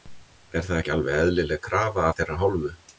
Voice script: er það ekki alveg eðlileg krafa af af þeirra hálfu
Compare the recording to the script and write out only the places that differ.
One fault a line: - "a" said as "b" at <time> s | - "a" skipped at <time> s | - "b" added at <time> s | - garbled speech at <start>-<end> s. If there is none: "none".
- "af" skipped at 2.2 s